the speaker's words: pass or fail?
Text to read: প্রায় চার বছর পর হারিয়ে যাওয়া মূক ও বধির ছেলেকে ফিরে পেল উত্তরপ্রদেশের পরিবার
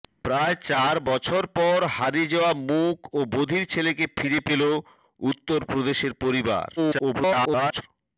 fail